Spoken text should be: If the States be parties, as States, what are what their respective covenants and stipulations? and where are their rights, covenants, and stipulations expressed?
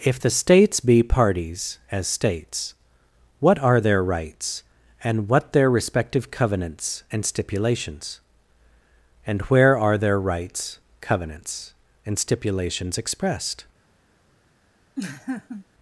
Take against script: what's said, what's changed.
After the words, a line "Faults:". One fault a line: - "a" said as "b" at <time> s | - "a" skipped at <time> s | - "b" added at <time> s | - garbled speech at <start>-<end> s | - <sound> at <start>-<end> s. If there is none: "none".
If the States be parties, as States, what are their rights, and what their respective covenants and stipulations? and where are their rights, covenants, and stipulations expressed?
Faults:
- "their rights and" added at 3.8 s
- laugh at 15.0-15.7 s